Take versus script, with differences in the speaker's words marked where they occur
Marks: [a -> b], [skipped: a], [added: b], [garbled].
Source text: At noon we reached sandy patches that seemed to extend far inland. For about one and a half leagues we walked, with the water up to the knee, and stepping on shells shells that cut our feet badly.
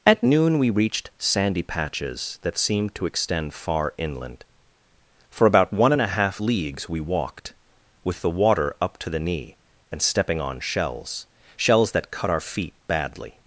At noon we reached sandy patches that seemed to extend far inland. For about one and a half leagues we walked, with the water up to the knee, and stepping on shells shells that cut our feet badly.